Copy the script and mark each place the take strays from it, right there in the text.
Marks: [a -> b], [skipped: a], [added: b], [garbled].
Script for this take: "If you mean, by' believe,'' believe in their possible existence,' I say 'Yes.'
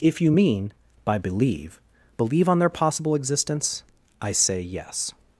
"If you mean, by' believe,'' believe [in -> on] their possible existence,' I say 'Yes.'